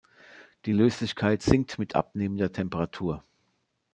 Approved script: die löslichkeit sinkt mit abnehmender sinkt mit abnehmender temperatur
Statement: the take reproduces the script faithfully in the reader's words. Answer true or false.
false